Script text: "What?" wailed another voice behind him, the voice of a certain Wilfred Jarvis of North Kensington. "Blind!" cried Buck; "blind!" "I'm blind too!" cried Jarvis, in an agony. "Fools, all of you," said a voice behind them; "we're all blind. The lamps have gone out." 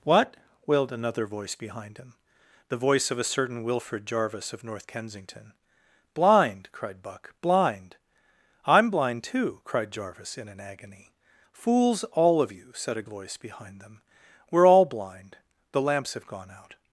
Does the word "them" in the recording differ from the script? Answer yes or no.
no